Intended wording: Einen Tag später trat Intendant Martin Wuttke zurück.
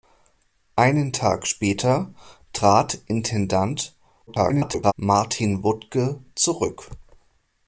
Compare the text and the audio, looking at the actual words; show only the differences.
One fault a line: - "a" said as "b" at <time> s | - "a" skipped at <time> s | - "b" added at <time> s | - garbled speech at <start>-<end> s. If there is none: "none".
- garbled speech at 4.3-4.9 s